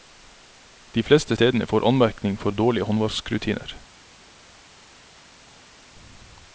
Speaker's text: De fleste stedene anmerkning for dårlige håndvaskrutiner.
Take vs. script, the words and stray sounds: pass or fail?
fail